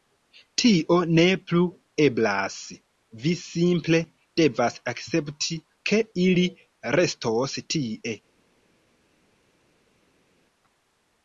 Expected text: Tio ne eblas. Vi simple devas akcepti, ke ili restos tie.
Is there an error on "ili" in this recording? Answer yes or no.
no